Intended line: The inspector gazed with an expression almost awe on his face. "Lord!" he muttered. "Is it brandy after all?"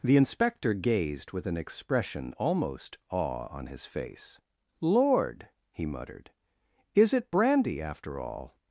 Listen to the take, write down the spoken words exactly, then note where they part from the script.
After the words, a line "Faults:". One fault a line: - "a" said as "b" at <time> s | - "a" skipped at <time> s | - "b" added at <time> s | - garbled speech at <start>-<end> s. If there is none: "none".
The inspector gazed with an expression almost awe on his face. "Lord!" he muttered. "Is it brandy after all?"
Faults:
none